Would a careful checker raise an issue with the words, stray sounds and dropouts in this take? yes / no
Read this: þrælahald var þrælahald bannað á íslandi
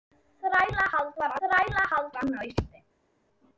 no